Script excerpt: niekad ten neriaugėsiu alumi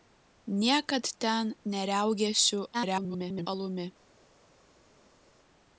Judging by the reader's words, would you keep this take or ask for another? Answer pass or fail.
fail